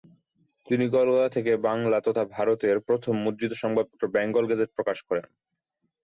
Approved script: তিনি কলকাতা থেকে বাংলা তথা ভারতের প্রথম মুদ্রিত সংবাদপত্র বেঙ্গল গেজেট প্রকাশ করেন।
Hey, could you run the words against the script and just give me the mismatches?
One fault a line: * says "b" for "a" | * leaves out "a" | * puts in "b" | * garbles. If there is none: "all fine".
all fine